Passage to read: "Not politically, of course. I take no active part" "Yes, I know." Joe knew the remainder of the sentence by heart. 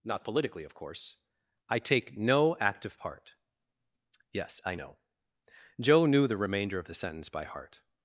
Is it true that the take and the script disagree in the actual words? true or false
false